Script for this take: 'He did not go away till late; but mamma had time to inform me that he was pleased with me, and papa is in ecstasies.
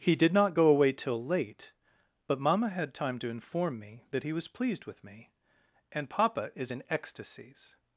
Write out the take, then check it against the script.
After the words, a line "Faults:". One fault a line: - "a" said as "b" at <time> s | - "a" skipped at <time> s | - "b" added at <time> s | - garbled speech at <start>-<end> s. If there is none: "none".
'He did not go away till late; but mamma had time to inform me that he was pleased with me, and papa is in ecstasies.
Faults:
none